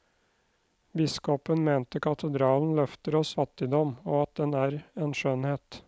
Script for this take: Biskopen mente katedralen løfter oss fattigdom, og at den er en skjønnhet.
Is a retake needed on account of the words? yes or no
no